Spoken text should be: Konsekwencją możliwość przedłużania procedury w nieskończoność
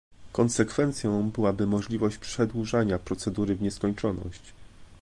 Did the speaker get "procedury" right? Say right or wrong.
right